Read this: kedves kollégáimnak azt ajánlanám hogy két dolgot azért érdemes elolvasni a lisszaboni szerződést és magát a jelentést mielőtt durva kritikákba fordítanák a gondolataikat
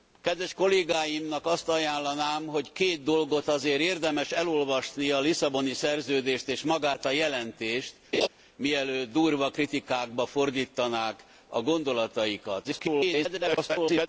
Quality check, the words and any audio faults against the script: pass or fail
fail